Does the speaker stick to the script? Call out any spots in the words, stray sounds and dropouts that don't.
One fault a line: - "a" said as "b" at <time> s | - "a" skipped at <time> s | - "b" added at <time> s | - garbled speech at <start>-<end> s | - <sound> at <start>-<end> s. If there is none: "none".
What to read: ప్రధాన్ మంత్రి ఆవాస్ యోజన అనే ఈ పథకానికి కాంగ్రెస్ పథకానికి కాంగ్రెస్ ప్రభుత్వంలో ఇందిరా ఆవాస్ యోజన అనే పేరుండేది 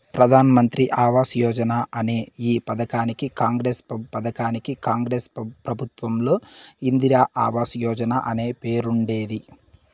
none